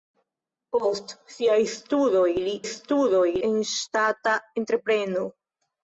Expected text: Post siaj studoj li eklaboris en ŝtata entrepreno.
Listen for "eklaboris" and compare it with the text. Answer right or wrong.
wrong